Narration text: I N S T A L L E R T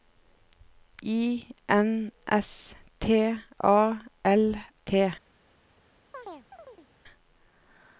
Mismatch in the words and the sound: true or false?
true